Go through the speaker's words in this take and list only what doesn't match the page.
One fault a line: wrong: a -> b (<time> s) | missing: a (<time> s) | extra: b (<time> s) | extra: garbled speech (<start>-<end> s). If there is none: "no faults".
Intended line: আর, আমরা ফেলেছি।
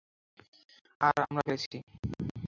no faults